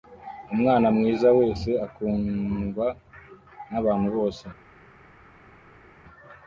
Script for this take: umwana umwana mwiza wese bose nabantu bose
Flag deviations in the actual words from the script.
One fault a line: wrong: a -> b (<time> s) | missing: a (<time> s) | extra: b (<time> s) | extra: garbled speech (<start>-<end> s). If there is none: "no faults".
missing: umwana (0.9 s)
wrong: bose -> akundwa (1.8 s)